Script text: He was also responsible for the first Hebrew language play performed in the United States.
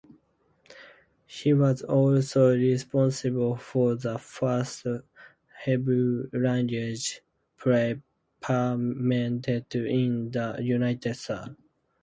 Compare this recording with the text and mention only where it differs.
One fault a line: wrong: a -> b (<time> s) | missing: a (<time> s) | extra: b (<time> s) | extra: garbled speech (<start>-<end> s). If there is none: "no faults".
no faults